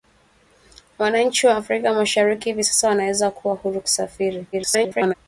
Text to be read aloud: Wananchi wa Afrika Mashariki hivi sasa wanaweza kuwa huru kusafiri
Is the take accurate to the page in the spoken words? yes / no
no